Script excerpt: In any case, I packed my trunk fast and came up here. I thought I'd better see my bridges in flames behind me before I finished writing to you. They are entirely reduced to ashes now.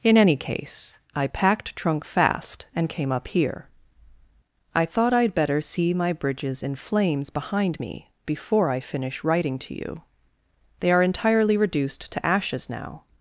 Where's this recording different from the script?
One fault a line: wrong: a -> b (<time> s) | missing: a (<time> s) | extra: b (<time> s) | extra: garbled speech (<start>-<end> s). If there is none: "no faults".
missing: my (1.8 s)
wrong: finished -> finish (8.8 s)